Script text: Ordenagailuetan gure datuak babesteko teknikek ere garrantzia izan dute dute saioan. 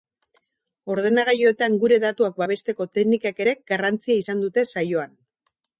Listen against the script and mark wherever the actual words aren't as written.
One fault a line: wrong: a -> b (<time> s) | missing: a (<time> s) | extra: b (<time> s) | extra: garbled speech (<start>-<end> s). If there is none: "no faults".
missing: dute (4.7 s)